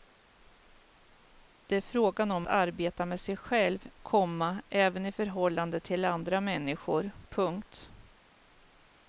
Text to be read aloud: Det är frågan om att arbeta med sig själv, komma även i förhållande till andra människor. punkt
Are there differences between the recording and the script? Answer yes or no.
yes